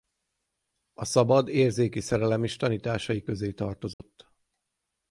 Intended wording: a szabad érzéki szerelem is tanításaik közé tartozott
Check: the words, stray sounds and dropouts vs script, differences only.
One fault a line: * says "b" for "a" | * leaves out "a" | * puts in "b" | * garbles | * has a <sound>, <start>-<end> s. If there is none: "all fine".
* has a dropout, 3.9-4.0 s